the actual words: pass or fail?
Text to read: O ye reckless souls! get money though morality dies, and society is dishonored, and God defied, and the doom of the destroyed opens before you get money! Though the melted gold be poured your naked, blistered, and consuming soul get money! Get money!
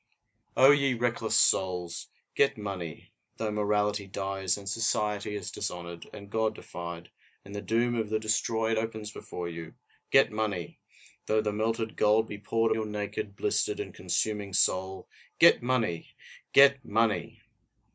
pass